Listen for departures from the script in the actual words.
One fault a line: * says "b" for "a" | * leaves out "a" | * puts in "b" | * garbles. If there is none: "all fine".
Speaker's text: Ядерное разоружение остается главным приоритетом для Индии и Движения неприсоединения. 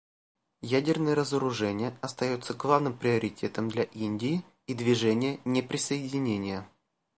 all fine